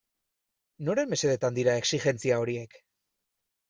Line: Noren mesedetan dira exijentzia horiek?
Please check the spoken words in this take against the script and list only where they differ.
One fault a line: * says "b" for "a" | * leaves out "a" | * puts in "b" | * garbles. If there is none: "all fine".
all fine